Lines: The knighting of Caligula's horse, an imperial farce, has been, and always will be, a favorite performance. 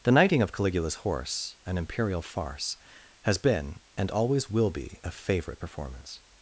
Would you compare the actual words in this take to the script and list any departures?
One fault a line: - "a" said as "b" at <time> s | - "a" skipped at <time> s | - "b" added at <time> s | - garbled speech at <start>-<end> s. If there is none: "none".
none